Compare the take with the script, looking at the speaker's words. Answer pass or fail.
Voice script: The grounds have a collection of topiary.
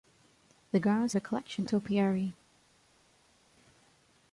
fail